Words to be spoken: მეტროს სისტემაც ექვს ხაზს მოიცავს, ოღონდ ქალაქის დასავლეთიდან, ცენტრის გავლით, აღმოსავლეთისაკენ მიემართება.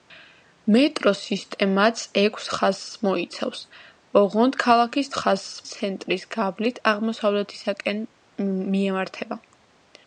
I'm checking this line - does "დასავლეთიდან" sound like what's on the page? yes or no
no